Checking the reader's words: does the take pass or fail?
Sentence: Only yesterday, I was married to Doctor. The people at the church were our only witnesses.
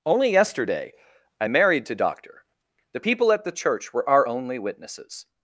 fail